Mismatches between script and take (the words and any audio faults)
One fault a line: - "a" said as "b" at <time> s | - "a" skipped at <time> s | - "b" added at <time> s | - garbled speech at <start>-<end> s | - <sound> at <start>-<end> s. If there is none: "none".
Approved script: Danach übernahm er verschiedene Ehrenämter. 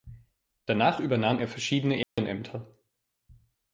- dropout at 2.0-2.2 s